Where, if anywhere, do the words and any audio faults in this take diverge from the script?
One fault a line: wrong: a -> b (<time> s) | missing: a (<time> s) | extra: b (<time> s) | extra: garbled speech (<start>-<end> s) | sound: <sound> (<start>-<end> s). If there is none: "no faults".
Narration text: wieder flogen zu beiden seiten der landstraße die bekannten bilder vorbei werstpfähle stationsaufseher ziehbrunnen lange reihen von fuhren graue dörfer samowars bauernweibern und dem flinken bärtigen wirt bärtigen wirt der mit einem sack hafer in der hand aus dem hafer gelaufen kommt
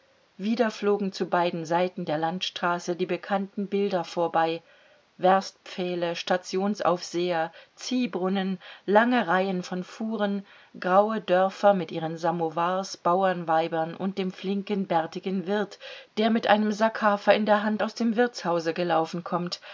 extra: mit ihren (11.8 s)
missing: bärtigen wirt (15.8 s)
wrong: hafer -> wirtshause (18.2 s)